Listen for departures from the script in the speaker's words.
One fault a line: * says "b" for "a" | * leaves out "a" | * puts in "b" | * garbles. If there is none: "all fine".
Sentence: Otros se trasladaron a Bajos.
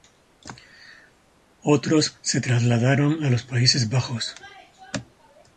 * puts in "los Países"